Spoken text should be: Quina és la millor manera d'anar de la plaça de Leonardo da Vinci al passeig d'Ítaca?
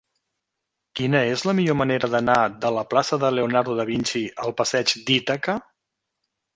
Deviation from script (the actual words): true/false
false